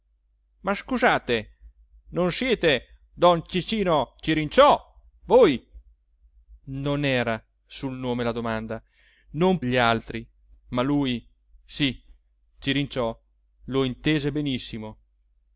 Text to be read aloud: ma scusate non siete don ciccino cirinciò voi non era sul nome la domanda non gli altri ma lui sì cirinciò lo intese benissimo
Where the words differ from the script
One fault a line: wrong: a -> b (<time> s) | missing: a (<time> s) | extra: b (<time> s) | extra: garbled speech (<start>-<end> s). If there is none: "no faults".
no faults